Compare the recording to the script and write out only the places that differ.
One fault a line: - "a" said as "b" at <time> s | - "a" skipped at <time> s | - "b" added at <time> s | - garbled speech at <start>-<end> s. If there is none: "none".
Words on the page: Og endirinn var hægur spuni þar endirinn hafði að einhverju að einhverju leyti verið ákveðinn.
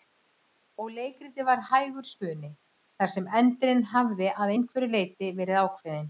- "endirinn" said as "leikritið" at 0.9 s
- "sem" added at 3.2 s
- "að einhverju" skipped at 4.9 s